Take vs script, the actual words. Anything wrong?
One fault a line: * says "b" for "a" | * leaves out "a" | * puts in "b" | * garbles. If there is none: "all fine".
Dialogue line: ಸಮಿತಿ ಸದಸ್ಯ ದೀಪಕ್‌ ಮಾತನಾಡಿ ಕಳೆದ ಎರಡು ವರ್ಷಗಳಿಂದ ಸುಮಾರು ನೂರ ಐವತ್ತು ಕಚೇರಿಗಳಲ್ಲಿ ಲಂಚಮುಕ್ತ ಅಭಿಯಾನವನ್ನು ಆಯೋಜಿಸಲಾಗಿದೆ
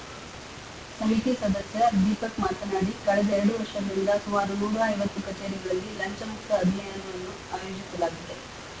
all fine